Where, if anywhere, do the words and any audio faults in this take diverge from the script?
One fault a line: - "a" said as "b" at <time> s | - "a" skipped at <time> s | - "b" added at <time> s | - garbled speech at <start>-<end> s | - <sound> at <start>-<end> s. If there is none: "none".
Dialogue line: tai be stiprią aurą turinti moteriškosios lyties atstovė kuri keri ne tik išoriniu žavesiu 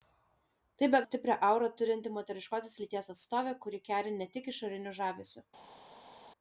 none